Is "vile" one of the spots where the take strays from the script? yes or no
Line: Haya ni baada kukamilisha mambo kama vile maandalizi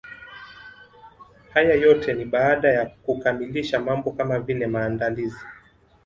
no